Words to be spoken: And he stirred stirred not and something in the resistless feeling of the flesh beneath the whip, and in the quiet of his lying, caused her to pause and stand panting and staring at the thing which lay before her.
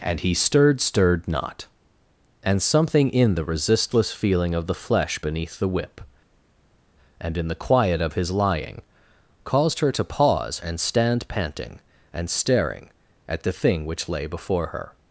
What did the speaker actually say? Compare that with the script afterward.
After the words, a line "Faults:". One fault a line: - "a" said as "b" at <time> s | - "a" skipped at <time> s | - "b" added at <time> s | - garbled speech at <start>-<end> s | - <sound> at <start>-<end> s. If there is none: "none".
And he stirred stirred not and something in the resistless feeling of the flesh beneath the whip, and in the quiet of his lying, caused her to pause and stand panting and staring at the thing which lay before her.
Faults:
none